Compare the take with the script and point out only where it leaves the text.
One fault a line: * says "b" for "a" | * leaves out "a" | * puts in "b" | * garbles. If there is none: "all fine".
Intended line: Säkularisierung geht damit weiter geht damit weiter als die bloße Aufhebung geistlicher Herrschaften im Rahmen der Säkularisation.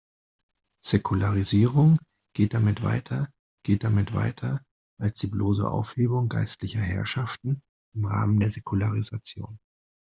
all fine